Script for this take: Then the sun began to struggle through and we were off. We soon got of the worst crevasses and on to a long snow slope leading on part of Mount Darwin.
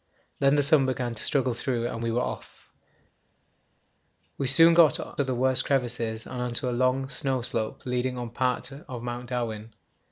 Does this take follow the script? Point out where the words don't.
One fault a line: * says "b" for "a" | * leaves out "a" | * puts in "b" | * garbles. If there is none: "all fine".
all fine